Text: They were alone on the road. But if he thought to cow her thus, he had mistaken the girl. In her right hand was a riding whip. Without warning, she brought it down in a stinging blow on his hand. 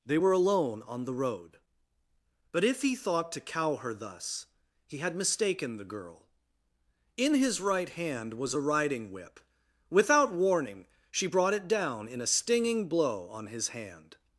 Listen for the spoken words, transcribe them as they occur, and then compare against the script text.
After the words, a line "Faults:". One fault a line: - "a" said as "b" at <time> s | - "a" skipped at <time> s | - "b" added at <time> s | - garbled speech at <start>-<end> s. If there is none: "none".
They were alone on the road. But if he thought to cow her thus, he had mistaken the girl. In his right hand was a riding whip. Without warning, she brought it down in a stinging blow on his hand.
Faults:
- "her" said as "his" at 7.3 s